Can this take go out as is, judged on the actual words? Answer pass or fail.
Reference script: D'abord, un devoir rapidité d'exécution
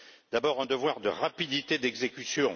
fail